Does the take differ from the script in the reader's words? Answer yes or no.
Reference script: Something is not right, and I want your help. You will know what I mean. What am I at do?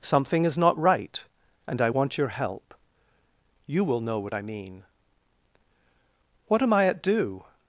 no